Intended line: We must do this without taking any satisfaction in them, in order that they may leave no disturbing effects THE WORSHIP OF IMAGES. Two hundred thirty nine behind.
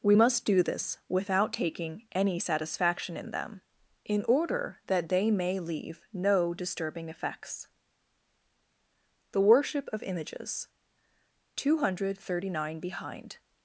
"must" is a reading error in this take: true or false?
false